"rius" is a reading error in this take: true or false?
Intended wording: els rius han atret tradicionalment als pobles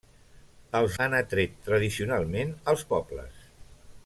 true